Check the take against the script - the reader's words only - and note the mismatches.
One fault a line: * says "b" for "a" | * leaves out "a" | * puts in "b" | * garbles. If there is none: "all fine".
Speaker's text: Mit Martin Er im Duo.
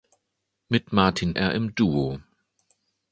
all fine